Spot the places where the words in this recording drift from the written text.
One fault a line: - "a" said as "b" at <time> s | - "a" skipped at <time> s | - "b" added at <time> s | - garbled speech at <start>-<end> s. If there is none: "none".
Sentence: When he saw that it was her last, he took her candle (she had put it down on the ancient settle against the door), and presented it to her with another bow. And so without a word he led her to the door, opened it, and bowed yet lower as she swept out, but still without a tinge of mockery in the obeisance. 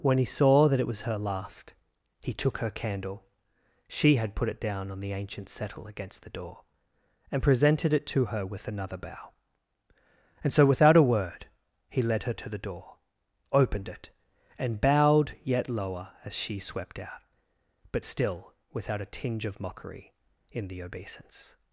none